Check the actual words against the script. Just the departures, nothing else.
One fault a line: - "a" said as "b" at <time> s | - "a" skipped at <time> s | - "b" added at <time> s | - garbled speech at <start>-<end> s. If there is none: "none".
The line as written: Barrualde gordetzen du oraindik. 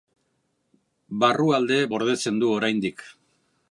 none